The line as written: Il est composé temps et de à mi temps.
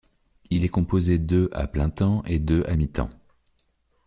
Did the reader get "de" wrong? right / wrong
right